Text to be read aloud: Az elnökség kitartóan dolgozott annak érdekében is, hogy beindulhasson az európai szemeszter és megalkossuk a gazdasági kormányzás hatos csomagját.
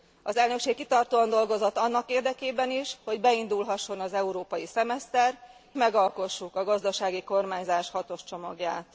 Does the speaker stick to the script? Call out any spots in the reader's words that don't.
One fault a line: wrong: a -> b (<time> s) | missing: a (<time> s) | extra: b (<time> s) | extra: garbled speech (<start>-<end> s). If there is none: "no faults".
missing: és (5.4 s)